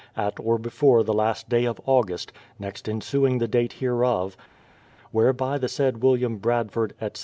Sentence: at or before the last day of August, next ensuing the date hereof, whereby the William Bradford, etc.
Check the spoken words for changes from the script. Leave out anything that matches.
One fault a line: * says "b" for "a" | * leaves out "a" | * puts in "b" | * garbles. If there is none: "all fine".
* puts in "said"